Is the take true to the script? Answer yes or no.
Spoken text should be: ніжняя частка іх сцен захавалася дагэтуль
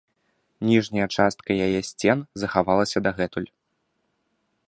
no